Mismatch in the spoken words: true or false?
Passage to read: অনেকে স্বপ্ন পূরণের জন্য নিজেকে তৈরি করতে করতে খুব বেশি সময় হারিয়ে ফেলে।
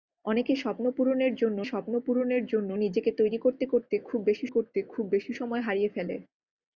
true